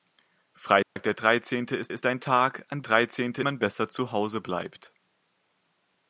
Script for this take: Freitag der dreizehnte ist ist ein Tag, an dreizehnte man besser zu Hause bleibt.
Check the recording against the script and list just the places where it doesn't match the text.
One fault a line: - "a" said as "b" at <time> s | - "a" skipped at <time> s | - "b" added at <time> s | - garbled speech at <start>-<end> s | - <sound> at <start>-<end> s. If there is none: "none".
- dropout at 0.8-1.0 s